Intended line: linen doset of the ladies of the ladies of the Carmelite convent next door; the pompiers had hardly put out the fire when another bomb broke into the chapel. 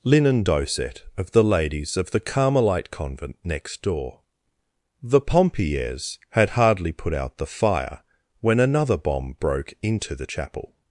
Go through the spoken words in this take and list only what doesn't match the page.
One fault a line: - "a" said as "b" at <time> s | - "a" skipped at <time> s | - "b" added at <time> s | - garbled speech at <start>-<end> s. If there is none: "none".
- "ladies of the" skipped at 2.2 s